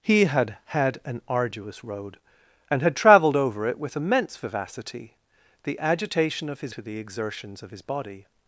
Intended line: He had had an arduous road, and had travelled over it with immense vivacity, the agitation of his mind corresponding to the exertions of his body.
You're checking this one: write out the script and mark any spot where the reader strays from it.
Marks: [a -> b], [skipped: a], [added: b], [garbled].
He had had an arduous road, and had travelled over it with immense vivacity, the agitation of his [skipped: mind corresponding] to the exertions of his body.